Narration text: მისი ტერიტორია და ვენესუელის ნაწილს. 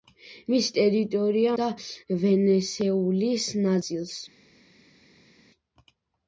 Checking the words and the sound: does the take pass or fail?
pass